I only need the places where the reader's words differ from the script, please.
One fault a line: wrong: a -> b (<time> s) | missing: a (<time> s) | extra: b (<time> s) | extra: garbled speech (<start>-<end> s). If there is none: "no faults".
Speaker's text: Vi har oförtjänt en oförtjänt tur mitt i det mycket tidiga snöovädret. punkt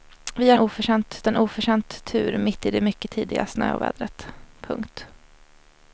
no faults